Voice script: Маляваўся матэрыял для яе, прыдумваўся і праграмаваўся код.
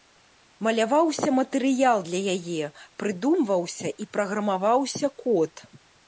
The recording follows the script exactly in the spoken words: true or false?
true